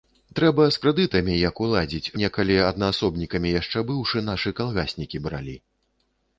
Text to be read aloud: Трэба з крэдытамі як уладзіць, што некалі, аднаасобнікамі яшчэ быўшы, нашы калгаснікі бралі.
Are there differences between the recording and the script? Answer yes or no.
yes